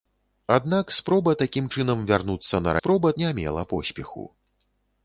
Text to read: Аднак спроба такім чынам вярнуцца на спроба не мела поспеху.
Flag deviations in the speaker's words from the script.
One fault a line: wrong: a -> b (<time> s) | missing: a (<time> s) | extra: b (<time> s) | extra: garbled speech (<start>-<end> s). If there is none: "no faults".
no faults